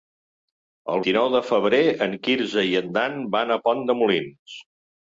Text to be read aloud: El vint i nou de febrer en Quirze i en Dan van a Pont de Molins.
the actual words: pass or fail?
fail